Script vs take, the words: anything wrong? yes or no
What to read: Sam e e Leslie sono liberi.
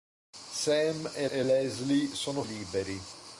no